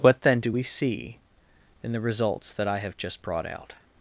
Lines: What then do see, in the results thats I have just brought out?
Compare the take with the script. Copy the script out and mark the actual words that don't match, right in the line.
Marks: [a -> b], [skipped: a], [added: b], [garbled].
What then do [added: we] see, in the results [thats -> that] I have just brought out?